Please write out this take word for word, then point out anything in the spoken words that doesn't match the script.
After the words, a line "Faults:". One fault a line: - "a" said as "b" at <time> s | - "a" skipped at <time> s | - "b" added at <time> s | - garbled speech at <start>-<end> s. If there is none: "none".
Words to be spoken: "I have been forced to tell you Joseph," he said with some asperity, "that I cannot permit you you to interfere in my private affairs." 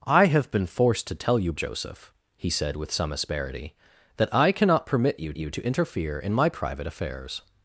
"I have been forced to tell you Joseph," he said with some asperity, "that I cannot permit you you to interfere in my private affairs."
Faults:
none